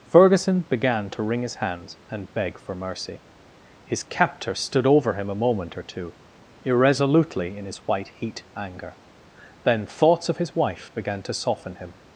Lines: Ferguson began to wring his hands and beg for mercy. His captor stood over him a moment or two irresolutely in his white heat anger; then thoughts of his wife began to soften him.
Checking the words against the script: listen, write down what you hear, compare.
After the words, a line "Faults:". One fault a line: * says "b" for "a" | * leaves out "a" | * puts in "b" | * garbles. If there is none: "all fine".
Ferguson began to wring his hands and beg for mercy. His captor stood over him a moment or two irresolutely in his white heat anger; then thoughts of his wife began to soften him.
Faults:
all fine